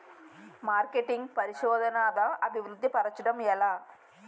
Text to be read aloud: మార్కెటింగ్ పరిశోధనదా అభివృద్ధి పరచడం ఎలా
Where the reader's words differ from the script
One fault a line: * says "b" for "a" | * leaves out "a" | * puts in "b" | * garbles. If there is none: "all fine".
all fine